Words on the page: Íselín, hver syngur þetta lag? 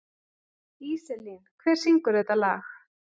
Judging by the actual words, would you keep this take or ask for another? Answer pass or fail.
pass